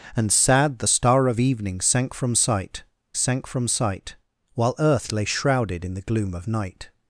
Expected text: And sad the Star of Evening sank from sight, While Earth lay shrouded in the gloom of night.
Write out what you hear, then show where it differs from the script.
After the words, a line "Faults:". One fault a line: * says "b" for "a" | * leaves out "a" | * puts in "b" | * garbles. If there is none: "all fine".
And sad the Star of Evening sank from sight sank from sight, While Earth lay shrouded in the gloom of night.
Faults:
* puts in "sank from sight"